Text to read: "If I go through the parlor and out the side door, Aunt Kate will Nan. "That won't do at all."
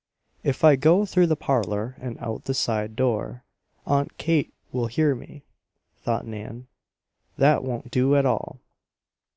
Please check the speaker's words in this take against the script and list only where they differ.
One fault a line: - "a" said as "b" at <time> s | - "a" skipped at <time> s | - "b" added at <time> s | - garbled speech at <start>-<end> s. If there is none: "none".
- "hear me thought" added at 4.9 s